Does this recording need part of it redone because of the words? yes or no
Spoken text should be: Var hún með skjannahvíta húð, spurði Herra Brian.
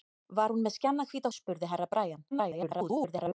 yes